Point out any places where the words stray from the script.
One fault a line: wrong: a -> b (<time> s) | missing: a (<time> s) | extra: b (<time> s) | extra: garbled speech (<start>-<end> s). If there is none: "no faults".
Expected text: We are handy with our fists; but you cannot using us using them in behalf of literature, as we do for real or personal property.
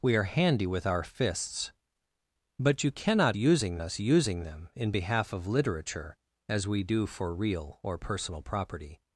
no faults